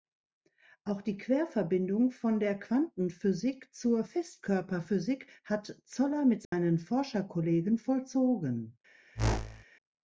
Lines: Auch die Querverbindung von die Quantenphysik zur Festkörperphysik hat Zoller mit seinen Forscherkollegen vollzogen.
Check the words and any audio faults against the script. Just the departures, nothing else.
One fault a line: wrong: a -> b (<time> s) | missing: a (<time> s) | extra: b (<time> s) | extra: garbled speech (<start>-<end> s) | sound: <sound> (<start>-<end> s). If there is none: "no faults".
wrong: die -> der (2.4 s)
sound: dropout (6.4-6.5 s)
sound: whoosh (9.1-9.6 s)